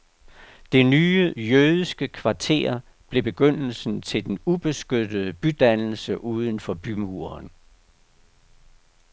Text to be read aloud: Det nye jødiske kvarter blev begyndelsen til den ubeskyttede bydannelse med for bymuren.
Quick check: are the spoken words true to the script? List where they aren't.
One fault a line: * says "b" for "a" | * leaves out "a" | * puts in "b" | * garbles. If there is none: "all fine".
* says "uden" for "med"